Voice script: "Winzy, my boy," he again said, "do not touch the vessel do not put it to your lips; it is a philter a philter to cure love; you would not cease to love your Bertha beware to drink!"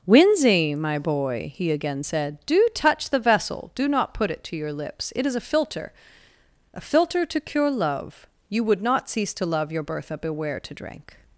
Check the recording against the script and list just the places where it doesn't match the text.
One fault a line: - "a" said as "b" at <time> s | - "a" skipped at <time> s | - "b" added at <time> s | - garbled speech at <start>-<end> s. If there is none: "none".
- "not" skipped at 2.7 s